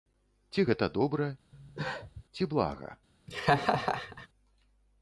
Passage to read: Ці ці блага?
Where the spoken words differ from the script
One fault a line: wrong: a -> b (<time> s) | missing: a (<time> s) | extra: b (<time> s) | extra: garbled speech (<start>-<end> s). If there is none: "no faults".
extra: гэта добра (0.7 s)